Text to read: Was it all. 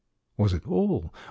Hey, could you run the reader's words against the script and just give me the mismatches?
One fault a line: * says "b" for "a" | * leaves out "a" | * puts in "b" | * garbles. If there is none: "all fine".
all fine